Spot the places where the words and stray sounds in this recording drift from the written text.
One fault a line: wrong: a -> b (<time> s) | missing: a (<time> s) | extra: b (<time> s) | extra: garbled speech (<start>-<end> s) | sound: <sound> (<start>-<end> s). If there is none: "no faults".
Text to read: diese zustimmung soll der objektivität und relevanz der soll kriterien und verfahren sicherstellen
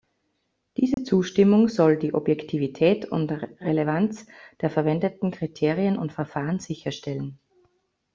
sound: dropout (0.9-1.0 s)
wrong: der -> die (2.0 s)
wrong: soll -> verwendeten (4.7 s)